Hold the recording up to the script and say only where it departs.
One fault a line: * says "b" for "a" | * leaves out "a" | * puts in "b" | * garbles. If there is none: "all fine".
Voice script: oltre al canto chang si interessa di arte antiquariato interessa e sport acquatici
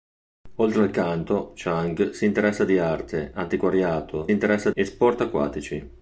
all fine